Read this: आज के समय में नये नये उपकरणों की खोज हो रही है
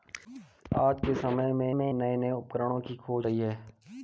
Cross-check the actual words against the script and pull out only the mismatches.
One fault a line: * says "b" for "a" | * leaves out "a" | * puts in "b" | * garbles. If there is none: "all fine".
* puts in "में"
* leaves out "हो"